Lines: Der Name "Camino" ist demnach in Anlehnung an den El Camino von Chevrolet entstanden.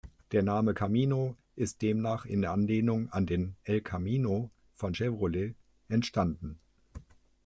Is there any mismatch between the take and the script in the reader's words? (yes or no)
no